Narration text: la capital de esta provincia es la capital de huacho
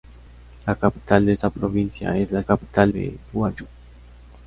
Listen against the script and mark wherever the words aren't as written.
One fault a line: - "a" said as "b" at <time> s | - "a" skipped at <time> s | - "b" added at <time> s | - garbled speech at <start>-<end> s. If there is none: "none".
none